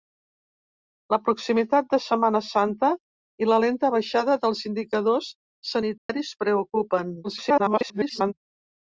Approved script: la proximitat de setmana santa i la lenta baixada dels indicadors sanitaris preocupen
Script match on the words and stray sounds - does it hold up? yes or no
no